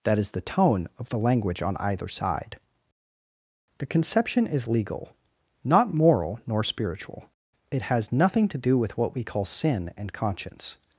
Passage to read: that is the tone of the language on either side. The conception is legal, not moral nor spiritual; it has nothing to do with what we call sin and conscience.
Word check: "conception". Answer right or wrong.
right